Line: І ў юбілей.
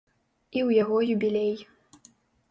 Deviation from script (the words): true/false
true